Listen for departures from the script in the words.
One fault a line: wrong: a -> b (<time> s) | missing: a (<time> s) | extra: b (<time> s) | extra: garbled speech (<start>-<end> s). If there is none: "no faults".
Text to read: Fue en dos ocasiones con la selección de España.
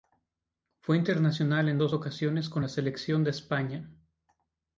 extra: internacional (1.0 s)